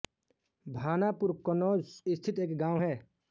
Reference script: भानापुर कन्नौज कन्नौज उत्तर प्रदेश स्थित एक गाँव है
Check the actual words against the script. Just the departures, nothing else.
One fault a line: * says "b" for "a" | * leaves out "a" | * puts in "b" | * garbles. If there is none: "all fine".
* leaves out "कन्नौज उत्तर प्रदेश"